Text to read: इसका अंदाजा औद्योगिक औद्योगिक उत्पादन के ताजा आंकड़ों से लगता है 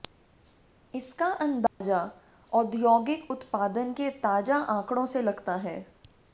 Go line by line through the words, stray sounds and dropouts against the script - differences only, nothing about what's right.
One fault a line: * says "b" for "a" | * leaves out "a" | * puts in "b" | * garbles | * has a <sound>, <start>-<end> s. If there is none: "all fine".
* has a dropout, 1.7-1.8 s
* leaves out "औद्योगिक"